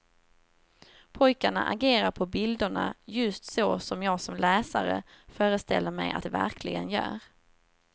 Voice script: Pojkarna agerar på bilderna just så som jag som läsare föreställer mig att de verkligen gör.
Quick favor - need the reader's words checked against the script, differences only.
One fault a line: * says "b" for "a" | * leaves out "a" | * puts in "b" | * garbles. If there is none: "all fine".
all fine